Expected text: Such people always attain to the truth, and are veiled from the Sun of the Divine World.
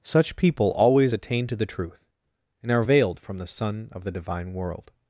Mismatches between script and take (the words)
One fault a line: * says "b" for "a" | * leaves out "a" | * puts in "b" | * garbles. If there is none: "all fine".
all fine